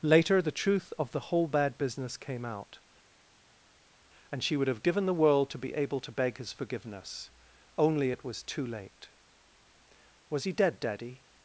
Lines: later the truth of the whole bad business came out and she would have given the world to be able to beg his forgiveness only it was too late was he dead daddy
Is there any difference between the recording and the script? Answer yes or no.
no